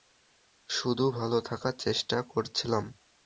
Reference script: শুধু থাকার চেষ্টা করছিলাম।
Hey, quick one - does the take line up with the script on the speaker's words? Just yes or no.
no